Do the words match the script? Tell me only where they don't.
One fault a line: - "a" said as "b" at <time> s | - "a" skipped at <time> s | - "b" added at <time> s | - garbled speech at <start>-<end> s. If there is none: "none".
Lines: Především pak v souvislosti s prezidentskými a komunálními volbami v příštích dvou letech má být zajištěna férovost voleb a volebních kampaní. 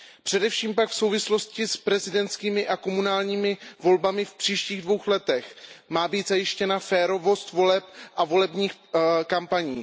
none